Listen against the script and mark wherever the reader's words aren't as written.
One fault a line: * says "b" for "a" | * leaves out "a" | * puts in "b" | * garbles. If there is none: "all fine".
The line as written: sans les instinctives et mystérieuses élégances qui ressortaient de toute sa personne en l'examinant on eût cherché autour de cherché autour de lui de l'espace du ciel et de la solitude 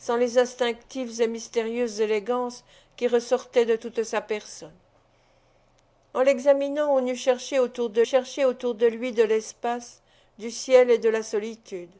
all fine